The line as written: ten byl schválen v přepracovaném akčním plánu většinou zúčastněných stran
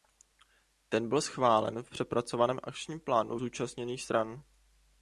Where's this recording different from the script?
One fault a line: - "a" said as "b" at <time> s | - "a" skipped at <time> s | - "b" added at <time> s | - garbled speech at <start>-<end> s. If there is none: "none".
- "většinou" skipped at 3.4 s